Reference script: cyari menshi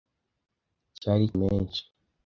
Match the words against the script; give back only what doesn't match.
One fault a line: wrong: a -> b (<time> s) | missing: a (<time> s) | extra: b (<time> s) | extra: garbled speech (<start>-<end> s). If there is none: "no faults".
no faults